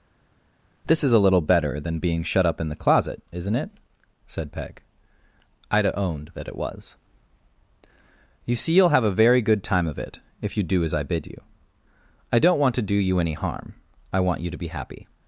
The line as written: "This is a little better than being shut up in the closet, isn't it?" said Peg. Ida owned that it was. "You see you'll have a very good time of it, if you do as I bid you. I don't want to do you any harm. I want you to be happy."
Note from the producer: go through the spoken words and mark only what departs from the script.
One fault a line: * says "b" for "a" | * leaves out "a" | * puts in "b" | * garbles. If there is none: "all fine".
all fine